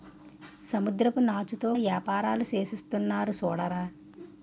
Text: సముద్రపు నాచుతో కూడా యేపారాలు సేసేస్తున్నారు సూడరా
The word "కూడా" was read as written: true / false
false